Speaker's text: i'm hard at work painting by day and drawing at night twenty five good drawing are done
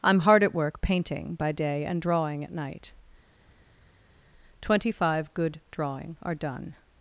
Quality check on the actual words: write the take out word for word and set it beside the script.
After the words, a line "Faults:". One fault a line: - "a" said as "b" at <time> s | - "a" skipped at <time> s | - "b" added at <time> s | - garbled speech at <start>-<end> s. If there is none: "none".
i'm hard at work painting by day and drawing at night twenty five good drawing are done
Faults:
none